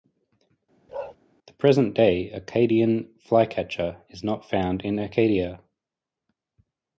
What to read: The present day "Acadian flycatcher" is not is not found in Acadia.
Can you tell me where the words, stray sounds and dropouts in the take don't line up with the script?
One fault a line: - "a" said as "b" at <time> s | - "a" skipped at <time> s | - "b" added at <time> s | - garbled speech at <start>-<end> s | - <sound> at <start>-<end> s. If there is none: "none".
- bark at 0.9-1.2 s
- "is not" skipped at 4.5 s